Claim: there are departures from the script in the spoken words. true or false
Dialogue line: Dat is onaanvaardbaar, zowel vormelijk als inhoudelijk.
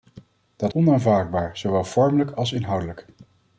true